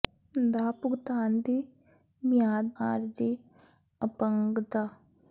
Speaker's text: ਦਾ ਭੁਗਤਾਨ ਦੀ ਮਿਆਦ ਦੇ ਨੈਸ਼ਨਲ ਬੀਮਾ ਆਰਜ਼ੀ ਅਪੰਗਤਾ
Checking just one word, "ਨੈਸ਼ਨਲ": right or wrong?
wrong